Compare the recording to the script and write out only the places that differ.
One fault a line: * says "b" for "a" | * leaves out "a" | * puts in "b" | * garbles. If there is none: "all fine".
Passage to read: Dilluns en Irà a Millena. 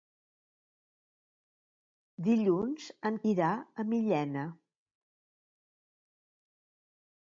all fine